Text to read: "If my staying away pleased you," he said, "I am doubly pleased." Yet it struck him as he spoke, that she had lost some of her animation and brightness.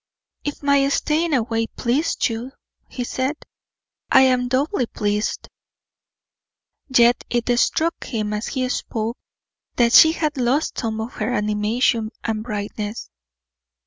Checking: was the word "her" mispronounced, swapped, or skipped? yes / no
no